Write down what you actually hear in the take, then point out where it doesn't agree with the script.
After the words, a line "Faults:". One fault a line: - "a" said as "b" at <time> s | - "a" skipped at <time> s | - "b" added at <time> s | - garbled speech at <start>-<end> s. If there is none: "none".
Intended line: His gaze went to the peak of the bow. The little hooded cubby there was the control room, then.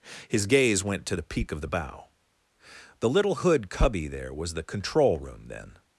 His gaze went to the peak of the bow. The little hood cubby there was the control room, then.
Faults:
- "hooded" said as "hood" at 3.3 s